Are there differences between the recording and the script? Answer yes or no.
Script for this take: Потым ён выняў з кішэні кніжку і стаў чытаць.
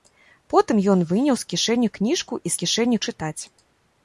yes